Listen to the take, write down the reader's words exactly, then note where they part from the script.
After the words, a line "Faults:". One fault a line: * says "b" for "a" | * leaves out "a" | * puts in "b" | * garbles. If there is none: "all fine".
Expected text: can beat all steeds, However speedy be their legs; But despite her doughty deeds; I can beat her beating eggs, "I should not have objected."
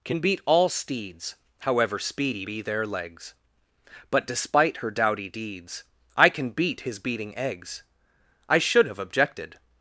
can beat all steeds, However speedy be their legs; But despite her doughty deeds; I can beat his beating eggs, "I should have objected."
Faults:
* says "his" for "her"
* leaves out "not"